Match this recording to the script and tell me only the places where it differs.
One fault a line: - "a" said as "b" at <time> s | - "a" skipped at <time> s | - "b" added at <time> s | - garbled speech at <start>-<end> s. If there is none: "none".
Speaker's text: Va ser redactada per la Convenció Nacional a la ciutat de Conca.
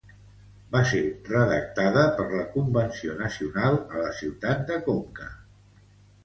none